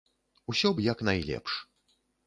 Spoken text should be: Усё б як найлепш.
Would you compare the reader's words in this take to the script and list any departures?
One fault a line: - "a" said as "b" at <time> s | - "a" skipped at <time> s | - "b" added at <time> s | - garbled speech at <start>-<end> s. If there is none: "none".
none